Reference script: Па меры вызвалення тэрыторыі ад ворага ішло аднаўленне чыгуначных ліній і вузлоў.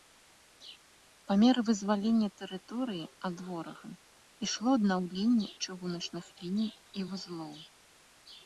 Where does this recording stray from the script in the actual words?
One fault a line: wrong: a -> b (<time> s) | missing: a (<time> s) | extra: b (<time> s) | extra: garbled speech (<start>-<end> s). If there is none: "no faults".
no faults